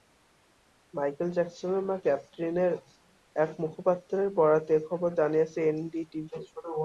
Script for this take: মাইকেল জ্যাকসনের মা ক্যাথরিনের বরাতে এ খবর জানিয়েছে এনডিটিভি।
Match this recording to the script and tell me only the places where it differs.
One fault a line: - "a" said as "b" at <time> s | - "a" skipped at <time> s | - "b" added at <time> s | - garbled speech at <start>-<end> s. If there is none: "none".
- "এক মুখপাত্রের" added at 3.4 s